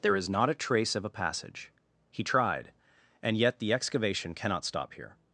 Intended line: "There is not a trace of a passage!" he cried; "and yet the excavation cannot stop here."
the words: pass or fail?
fail